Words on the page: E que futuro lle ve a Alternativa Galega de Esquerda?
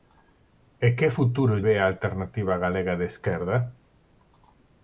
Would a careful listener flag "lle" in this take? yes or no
yes